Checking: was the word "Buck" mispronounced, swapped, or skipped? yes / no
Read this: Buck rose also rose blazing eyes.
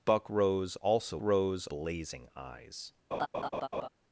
no